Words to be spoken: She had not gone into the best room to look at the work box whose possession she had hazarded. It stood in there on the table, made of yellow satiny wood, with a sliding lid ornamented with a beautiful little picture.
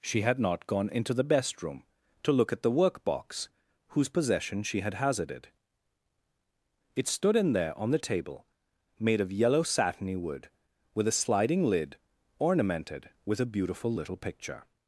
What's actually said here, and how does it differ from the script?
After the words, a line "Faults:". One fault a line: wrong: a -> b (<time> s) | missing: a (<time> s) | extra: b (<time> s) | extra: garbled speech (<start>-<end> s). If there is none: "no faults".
She had not gone into the best room to look at the work box whose possession she had hazarded. It stood in there on the table, made of yellow satiny wood, with a sliding lid ornamented with a beautiful little picture.
Faults:
no faults